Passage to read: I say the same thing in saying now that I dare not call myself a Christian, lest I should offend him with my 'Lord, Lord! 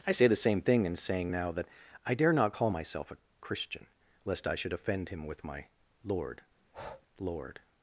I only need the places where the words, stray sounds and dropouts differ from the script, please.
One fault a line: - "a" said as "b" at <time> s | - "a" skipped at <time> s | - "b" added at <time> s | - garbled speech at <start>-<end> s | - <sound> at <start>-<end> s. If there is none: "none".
- breath at 6.6-7.1 s